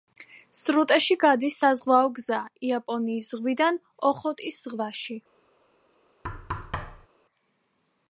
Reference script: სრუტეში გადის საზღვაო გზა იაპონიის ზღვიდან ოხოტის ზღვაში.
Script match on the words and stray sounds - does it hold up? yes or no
no